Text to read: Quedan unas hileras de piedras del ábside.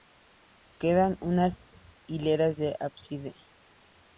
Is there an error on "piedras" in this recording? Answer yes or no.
yes